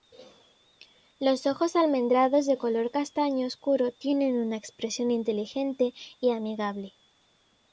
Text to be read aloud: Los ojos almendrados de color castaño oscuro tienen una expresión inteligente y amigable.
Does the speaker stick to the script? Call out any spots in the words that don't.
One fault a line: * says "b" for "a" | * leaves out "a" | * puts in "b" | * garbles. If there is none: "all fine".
all fine